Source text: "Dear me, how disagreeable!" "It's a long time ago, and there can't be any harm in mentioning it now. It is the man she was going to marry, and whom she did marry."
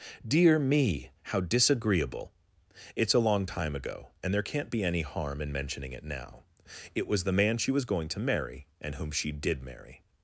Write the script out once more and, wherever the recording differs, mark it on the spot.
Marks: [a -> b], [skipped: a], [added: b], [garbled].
"Dear me, how disagreeable!" "It's a long time ago, and there can't be any harm in mentioning it now. It [is -> was] the man she was going to marry, and whom she did marry."